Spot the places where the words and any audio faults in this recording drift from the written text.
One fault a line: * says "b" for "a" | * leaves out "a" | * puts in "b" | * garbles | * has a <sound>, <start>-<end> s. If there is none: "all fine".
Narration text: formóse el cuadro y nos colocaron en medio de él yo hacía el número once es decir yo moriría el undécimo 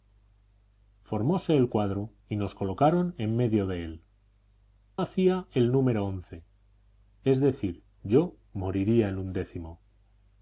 * leaves out "yo"